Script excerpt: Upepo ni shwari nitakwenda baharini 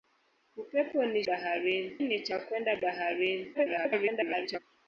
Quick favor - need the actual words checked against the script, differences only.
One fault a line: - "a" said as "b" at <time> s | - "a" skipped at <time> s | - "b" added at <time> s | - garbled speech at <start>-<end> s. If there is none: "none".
- "shwari" said as "baharini" at 1.3 s
- garbled speech at 3.5-4.6 s